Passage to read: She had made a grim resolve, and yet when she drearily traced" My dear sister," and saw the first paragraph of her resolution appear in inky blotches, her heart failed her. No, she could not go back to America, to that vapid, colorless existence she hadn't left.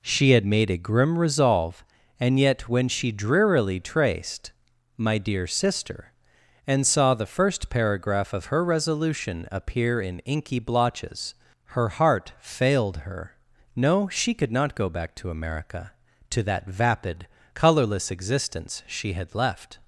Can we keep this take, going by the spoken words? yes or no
no